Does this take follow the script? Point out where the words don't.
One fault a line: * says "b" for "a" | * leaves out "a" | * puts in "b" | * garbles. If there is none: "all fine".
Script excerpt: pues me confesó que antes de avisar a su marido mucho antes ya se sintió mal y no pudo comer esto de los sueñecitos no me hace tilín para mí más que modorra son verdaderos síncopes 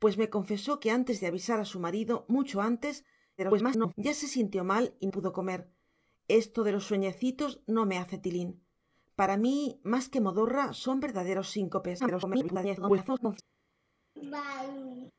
* garbles
* leaves out "no"
* garbles